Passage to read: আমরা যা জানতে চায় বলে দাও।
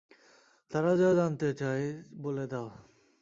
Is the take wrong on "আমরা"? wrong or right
wrong